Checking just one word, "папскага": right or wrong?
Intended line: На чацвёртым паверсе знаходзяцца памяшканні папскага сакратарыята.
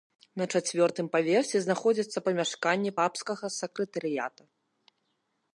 right